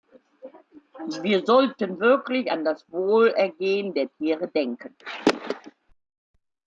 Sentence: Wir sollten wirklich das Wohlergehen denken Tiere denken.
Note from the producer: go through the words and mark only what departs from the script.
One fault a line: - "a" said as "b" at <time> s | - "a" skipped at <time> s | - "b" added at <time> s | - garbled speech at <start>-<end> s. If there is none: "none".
- "an" added at 2.5 s
- "denken" said as "der" at 3.9 s